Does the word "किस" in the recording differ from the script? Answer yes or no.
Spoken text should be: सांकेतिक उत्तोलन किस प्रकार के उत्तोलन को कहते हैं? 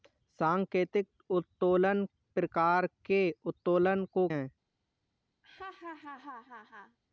yes